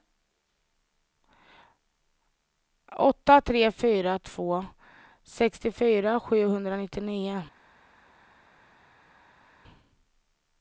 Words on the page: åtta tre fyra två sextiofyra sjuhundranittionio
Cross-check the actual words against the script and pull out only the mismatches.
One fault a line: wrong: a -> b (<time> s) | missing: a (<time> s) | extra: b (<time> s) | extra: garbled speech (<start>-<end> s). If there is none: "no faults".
no faults